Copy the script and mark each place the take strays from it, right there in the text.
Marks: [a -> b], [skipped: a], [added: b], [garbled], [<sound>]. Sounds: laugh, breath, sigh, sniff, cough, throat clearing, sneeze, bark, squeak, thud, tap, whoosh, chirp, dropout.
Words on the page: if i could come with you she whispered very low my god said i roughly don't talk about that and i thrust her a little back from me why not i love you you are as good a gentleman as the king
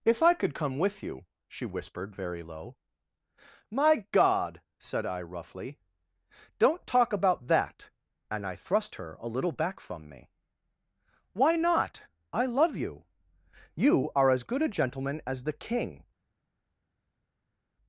if i could come with you she whispered very low my god said i roughly don't talk about that and i thrust her a little back from me why not i love you you are as good a gentleman as the king